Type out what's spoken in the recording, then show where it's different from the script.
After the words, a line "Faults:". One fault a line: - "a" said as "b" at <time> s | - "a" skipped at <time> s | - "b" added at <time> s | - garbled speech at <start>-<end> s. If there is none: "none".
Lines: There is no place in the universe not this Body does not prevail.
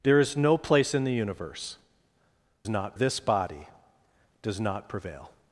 There is no place in the universe not this Body does not prevail.
Faults:
none